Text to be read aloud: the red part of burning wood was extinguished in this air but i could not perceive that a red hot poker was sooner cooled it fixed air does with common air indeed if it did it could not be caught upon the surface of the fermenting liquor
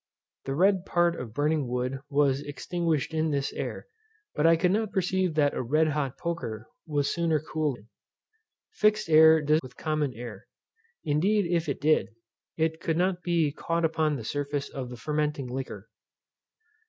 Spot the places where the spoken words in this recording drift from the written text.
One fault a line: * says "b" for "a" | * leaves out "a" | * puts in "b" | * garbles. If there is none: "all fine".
all fine